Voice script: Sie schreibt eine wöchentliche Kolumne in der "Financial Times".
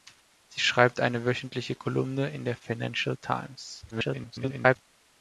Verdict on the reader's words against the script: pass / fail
fail